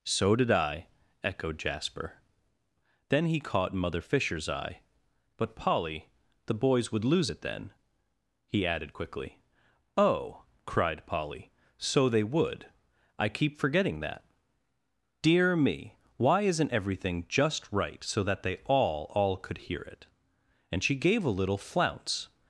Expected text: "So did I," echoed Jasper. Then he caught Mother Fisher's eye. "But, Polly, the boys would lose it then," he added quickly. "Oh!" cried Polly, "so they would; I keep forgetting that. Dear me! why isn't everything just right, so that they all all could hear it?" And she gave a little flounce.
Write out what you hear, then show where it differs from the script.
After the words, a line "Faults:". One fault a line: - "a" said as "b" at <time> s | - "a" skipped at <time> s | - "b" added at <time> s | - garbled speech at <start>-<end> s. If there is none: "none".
"So did I," echoed Jasper. Then he caught Mother Fisher's eye. "But, Polly, the boys would lose it then," he added quickly. "Oh!" cried Polly, "so they would; I keep forgetting that. Dear me! why isn't everything just right, so that they all all could hear it?" And she gave a little flounce.
Faults:
none